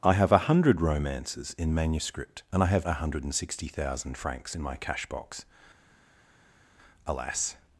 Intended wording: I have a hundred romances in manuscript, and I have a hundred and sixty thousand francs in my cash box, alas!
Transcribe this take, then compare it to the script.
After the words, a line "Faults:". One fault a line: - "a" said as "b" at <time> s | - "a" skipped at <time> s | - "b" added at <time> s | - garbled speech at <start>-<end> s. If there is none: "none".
I have a hundred romances in manuscript, and I have a hundred and sixty thousand francs in my cash box, alas!
Faults:
none